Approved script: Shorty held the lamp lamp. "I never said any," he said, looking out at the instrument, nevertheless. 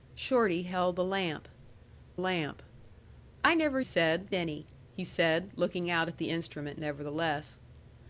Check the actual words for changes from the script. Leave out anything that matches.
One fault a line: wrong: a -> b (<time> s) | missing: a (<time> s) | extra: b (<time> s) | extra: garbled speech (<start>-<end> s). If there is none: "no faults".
no faults